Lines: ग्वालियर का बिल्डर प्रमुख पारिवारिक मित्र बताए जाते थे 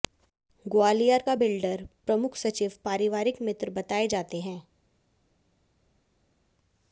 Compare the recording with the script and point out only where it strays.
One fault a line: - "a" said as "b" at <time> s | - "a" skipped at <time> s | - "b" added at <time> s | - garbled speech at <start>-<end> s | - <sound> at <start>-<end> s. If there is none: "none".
- "सचिव" added at 2.4 s
- "थे" said as "हैं" at 4.4 s